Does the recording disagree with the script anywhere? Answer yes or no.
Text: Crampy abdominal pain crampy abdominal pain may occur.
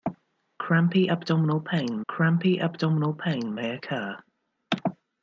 no